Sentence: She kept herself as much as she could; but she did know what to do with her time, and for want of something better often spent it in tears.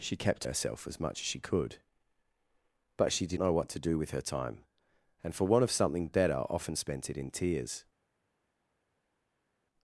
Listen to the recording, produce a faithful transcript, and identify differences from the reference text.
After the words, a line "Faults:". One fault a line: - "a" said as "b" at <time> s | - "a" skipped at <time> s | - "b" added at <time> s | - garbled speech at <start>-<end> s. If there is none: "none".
She kept herself as much as she could; but she did know what to do with her time, and for want of something better often spent it in tears.
Faults:
none